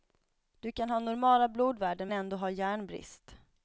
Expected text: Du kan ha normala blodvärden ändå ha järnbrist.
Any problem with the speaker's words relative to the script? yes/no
no